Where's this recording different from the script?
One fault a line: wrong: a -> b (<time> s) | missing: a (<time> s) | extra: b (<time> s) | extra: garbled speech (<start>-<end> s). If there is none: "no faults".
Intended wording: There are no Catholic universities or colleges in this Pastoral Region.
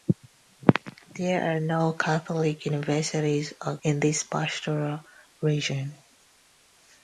missing: colleges (3.8 s)